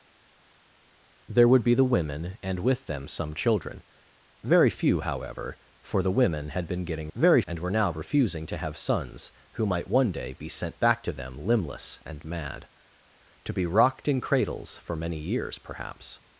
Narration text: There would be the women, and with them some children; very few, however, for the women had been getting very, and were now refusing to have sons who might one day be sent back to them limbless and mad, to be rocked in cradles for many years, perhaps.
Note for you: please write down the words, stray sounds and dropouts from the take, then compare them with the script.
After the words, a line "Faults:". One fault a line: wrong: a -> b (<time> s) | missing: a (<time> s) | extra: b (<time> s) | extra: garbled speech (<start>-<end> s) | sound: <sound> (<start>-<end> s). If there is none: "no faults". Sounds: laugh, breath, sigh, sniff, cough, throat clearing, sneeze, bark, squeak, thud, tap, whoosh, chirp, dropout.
There would be the women, and with them some children; very few, however, for the women had been getting very, and were now refusing to have sons who might one day be sent back to them limbless and mad, to be rocked in cradles for many years, perhaps.
Faults:
no faults